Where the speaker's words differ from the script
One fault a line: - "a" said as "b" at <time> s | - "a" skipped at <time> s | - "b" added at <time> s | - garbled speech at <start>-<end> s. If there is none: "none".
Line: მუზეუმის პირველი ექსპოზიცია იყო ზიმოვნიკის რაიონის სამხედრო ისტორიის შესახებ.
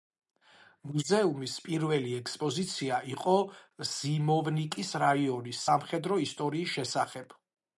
none